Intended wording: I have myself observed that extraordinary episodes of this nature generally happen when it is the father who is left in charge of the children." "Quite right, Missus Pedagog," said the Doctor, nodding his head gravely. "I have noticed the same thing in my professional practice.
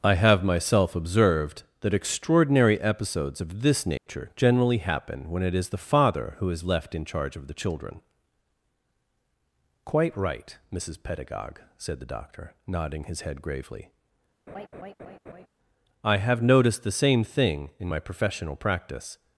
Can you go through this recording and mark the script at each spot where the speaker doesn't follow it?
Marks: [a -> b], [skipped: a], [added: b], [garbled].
I have myself observed that extraordinary episodes of this nature generally happen when it is the father who is left in charge of the children." "Quite right, Missus Pedagog," said the Doctor, nodding his head gravely. "I have noticed the same thing in my professional practice.